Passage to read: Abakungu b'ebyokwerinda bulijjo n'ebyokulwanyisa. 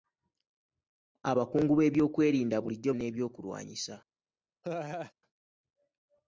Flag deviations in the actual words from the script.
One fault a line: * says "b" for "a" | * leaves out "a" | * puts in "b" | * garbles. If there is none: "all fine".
all fine